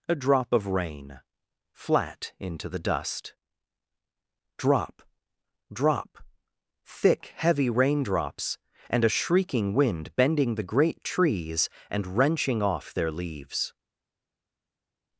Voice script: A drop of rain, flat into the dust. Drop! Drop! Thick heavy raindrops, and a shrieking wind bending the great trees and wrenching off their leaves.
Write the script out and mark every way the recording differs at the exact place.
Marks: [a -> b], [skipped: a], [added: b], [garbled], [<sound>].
A drop of rain, flat into the dust. Drop! Drop! Thick heavy raindrops, and a shrieking wind bending the great trees and wrenching off their leaves.